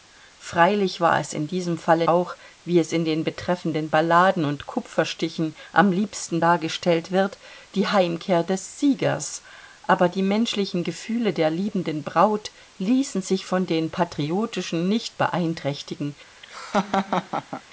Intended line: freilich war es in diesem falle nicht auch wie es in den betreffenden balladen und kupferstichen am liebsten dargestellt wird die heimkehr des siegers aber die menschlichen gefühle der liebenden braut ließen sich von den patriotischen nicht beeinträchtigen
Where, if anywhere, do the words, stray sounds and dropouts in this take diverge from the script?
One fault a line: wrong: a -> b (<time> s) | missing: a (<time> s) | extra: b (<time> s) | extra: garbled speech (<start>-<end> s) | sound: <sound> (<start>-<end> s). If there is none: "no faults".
missing: nicht (2.1 s)
sound: laugh (16.4-17.6 s)